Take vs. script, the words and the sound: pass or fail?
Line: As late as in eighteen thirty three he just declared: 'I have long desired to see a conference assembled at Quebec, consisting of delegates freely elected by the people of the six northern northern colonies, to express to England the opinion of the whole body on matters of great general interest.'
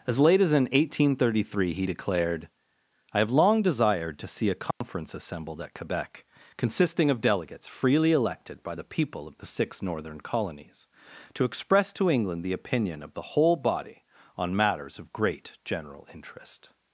fail